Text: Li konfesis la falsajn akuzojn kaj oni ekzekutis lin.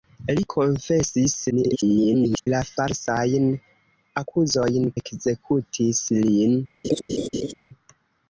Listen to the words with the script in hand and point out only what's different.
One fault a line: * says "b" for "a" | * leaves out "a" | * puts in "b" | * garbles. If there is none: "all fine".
* garbles
* leaves out "kaj oni"